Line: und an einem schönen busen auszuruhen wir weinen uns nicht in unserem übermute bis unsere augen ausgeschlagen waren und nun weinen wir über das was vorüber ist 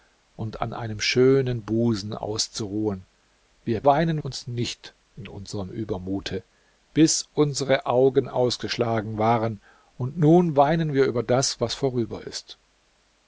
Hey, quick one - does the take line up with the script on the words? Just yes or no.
yes